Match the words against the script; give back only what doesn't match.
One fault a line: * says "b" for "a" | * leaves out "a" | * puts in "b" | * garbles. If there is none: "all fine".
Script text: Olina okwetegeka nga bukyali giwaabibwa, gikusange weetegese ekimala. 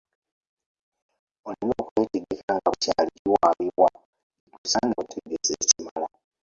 all fine